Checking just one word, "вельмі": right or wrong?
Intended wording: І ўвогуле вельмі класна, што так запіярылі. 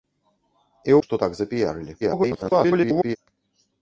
wrong